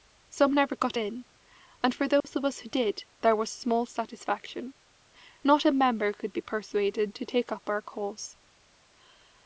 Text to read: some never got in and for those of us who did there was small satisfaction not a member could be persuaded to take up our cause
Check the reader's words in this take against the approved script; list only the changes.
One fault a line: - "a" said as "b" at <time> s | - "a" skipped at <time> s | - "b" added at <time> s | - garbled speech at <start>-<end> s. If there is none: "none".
none